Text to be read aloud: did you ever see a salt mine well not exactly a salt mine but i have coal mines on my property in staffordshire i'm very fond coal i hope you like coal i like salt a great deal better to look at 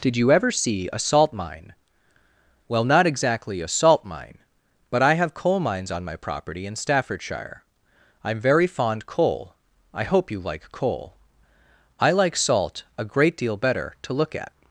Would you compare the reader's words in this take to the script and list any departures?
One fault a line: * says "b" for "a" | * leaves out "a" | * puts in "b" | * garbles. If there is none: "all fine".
all fine